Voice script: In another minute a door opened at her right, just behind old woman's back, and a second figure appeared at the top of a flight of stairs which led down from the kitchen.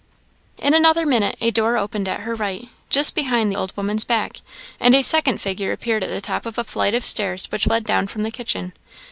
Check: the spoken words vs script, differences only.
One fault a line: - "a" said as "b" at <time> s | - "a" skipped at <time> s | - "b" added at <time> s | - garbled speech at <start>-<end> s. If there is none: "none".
none